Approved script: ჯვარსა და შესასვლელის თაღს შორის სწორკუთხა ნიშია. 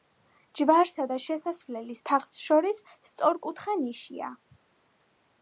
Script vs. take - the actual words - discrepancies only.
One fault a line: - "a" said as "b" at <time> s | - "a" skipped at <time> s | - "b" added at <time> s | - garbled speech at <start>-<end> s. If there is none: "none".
none